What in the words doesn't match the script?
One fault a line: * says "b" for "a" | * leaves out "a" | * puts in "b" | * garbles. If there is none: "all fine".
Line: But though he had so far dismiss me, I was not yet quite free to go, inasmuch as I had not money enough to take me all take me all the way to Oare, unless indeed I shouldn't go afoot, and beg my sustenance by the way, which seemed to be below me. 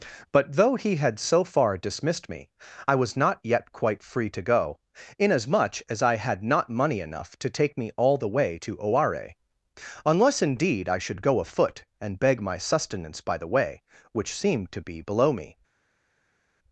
* says "dismissed" for "dismiss"
* leaves out "take me all"
* says "should" for "shouldn't"